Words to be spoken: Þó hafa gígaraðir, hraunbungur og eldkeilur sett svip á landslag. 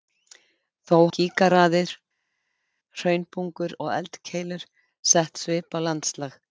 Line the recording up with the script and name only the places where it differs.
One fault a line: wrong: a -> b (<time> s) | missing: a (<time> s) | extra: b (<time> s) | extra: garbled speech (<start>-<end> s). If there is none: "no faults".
missing: hafa (0.9 s)